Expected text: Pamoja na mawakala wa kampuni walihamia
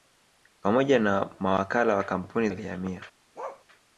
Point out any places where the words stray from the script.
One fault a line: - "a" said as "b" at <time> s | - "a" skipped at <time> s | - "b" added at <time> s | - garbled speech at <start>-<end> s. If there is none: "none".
none